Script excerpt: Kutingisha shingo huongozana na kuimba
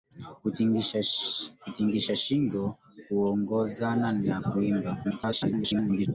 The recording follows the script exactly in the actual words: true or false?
false